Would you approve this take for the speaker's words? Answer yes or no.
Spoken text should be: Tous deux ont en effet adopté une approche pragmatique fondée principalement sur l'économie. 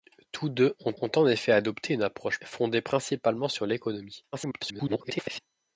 no